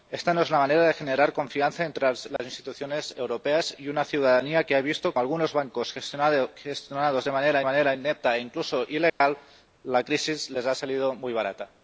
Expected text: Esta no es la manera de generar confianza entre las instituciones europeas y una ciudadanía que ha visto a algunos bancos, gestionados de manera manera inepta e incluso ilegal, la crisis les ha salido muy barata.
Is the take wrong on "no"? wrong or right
right